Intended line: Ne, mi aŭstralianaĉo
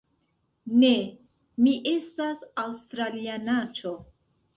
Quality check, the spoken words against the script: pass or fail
fail